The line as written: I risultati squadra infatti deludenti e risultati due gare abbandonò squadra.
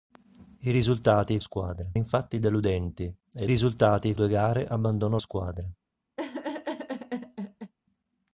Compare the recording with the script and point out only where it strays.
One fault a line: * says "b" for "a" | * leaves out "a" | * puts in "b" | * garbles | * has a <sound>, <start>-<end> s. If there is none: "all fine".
* has a laugh, 6.2-7.7 s